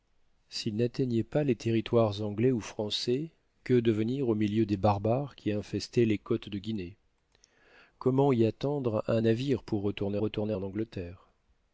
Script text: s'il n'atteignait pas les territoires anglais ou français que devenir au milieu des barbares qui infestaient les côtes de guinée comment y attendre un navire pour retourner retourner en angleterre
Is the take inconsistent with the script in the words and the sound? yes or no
no